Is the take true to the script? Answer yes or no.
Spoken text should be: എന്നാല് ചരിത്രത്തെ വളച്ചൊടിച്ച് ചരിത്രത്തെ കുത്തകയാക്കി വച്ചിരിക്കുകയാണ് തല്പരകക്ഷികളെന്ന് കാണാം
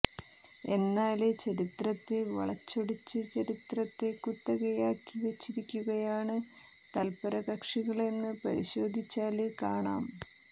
no